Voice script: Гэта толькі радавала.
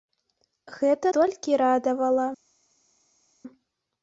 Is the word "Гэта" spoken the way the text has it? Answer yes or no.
yes